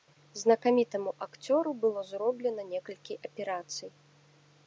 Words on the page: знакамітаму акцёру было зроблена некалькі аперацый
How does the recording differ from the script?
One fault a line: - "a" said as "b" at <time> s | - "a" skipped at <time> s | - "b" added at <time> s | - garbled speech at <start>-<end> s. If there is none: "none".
none